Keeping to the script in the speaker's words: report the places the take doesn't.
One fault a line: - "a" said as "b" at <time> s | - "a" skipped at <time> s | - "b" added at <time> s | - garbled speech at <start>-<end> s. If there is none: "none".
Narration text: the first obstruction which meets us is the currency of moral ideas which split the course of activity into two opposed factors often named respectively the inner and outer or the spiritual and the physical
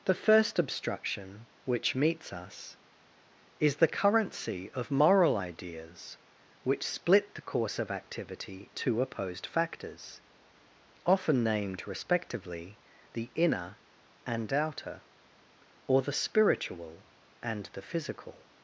- "into" skipped at 8.7 s